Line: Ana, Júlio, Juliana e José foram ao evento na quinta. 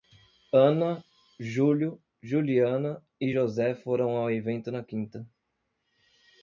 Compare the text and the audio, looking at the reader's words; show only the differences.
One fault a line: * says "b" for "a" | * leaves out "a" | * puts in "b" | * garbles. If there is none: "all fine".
all fine